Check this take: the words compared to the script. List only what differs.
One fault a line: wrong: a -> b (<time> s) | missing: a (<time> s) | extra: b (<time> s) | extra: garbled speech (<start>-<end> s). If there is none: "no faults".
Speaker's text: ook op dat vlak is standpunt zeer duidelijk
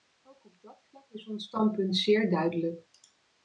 extra: ons (1.3 s)